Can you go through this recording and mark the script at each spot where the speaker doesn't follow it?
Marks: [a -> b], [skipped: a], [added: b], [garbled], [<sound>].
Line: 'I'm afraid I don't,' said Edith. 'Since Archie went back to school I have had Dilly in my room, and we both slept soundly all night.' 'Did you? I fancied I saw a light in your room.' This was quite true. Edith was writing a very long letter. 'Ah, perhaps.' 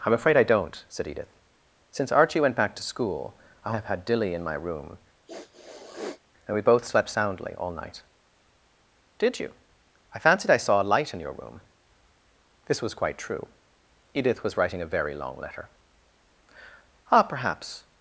'I'm afraid I don't,' said Edith. 'Since Archie went back to school I have had Dilly in my room, [sniff] and we both slept soundly all night.' 'Did you? I fancied I saw a light in your room.' This was quite true. Edith was writing a very long letter. 'Ah, perhaps.'